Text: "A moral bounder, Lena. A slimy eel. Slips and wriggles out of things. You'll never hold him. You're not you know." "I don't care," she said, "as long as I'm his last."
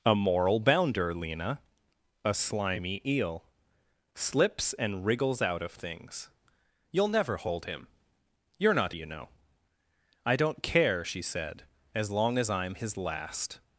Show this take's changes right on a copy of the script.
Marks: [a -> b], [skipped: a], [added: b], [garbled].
"A moral bounder, Lena. A slimy eel. Slips and wriggles out of things. You'll never hold him. You're not you know." "I don't care," she said, "as long as I'm his last."